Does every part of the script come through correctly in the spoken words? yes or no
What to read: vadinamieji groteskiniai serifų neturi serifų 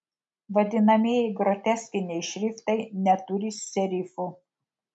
no